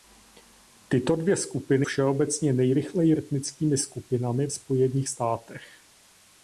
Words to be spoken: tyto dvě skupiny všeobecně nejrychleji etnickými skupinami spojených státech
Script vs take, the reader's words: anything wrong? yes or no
no